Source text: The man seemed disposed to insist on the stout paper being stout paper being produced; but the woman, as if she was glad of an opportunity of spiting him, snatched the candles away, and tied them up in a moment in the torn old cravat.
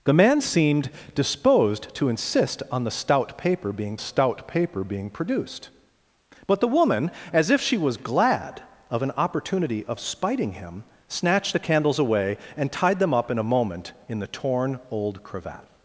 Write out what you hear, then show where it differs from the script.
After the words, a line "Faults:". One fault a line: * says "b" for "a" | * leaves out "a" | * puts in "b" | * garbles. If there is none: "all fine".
The man seemed disposed to insist on the stout paper being stout paper being produced; but the woman, as if she was glad of an opportunity of spiting him, snatched the candles away, and tied them up in a moment in the torn old cravat.
Faults:
all fine